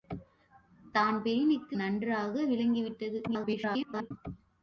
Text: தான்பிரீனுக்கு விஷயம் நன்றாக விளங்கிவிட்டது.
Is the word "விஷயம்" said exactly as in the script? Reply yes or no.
no